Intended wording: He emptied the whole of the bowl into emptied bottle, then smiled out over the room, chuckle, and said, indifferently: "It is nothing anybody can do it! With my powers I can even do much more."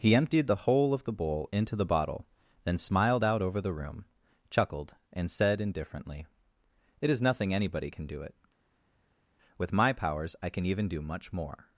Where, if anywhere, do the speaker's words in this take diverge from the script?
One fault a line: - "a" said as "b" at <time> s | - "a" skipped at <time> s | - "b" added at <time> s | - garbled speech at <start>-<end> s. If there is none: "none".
- "emptied" said as "the" at 1.8 s
- "chuckle" said as "chuckled" at 4.5 s